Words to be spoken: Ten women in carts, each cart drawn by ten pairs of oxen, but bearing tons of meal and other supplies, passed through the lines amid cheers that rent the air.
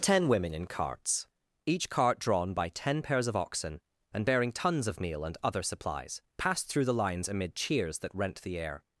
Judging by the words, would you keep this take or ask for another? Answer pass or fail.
fail